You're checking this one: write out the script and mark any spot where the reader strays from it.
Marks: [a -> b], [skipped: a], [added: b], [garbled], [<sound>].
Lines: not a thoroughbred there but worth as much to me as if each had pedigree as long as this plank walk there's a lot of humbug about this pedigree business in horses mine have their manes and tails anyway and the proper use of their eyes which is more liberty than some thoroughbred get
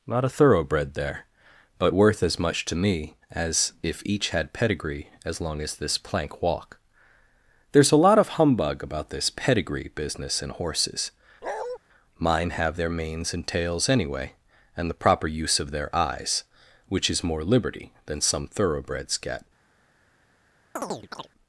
not a thoroughbred there but worth as much to me as if each had pedigree as long as this plank walk there's a lot of humbug about this pedigree business in horses [bark] mine have their manes and tails anyway and the proper use of their eyes which is more liberty than some [thoroughbred -> thoroughbreds] get [chirp]